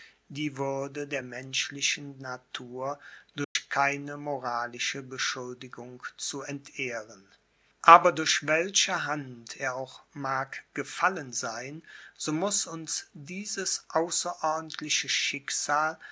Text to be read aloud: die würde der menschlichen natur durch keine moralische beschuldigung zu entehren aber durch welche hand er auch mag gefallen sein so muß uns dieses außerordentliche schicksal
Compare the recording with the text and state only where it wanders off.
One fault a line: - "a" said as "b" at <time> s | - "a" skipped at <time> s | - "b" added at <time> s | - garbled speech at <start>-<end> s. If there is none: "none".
none